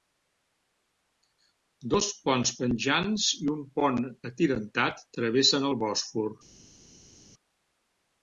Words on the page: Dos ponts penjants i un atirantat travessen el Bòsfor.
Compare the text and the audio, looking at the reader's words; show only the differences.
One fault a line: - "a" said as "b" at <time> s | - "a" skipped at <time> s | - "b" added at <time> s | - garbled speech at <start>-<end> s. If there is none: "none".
- "pont" added at 3.8 s